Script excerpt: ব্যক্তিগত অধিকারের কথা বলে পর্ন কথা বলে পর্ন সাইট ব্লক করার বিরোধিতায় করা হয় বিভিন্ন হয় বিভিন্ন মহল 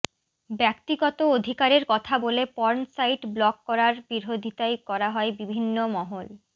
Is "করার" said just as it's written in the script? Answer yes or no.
yes